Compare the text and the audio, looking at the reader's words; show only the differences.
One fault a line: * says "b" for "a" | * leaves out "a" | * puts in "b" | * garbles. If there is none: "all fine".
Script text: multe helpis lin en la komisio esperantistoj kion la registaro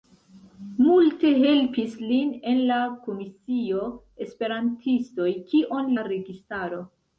all fine